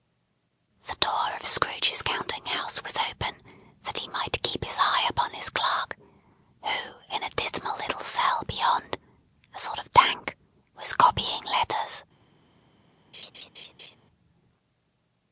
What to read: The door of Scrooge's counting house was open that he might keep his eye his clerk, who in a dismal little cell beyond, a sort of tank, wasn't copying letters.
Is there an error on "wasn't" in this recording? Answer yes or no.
yes